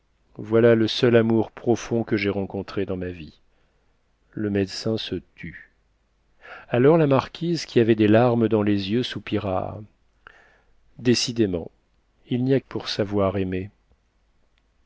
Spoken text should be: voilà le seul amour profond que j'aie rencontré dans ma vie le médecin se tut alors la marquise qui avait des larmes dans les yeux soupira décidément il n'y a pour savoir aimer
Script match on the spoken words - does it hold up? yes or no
yes